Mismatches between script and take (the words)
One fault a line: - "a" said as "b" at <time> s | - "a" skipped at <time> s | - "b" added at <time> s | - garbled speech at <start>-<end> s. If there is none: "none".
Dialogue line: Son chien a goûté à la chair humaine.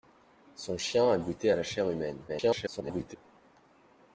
- garbled speech at 2.3-3.2 s